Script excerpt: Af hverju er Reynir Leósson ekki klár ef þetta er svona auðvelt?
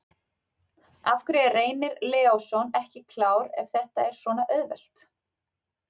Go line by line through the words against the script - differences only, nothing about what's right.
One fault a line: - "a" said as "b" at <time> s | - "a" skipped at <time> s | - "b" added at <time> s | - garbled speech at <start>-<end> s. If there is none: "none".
none